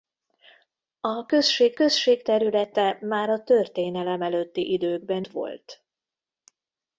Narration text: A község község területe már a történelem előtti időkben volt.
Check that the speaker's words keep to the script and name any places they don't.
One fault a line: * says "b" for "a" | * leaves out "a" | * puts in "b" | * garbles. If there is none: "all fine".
all fine